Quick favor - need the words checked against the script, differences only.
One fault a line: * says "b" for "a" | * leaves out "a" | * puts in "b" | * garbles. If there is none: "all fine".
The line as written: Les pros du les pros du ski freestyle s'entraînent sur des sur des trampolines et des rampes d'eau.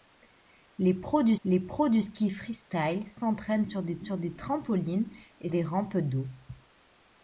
all fine